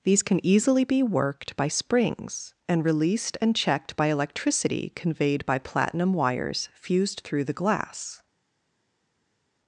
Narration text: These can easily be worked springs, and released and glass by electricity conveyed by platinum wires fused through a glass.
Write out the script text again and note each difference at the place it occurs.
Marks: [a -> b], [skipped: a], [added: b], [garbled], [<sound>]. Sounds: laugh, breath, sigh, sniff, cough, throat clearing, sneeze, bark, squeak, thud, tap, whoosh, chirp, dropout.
These can easily be worked [added: by] springs, and released and [glass -> checked] by electricity conveyed by platinum wires fused through [a -> the] glass.